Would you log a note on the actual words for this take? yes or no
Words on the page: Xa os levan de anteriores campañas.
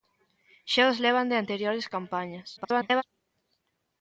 yes